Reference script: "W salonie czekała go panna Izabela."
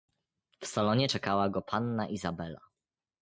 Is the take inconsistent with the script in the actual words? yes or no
no